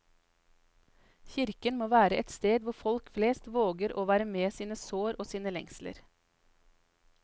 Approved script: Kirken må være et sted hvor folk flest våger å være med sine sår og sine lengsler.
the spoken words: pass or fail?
pass